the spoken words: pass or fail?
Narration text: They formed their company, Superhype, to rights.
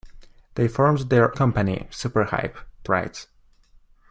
pass